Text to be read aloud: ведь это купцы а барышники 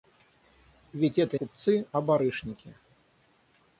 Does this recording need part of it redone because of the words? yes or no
no